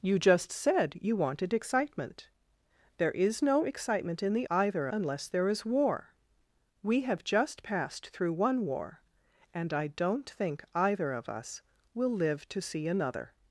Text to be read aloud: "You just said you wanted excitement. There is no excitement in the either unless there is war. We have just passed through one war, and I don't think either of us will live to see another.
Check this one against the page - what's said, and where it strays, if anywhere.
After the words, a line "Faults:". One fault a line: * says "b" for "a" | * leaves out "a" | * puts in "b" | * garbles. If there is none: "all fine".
"You just said you wanted excitement. There is no excitement in the either unless there is war. We have just passed through one war, and I don't think either of us will live to see another.
Faults:
all fine